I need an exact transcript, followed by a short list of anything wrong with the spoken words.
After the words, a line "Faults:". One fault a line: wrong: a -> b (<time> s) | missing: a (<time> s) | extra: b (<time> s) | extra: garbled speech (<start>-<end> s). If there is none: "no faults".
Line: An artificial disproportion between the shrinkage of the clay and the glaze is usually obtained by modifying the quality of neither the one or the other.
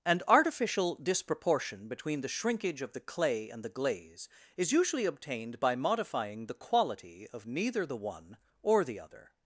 An artificial disproportion between the shrinkage of the clay and the glaze is usually obtained by modifying the quality of neither the one or the other.
Faults:
no faults